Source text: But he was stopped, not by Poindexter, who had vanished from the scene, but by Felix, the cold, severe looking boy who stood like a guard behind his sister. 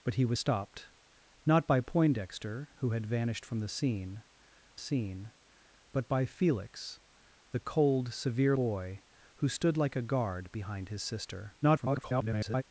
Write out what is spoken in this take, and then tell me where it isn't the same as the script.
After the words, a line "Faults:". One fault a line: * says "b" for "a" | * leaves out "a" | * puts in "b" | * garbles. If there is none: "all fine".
But he was stopped, not by Poindexter, who had vanished from the scene scene, but by Felix, the cold, severe boy who stood like a guard behind his sister. [garbled]
Faults:
* puts in "scene"
* leaves out "looking"
* garbles